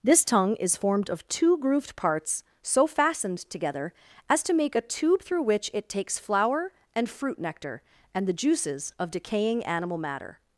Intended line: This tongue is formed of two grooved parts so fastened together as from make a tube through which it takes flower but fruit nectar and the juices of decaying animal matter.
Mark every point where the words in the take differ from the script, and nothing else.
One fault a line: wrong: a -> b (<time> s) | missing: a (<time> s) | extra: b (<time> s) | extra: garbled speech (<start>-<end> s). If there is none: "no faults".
wrong: from -> to (4.4 s)
wrong: but -> and (7.0 s)